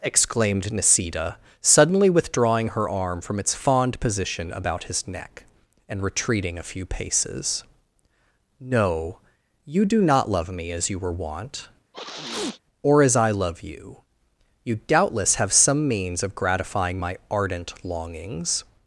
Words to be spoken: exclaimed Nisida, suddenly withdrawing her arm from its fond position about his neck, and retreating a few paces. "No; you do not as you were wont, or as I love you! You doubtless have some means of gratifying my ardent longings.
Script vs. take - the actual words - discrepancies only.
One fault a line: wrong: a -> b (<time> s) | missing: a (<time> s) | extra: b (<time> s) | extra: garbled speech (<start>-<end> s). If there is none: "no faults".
extra: love me (10.3 s)